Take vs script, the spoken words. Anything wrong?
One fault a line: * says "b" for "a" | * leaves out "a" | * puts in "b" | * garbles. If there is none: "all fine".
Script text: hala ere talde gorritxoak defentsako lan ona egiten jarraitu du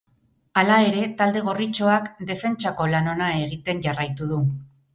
all fine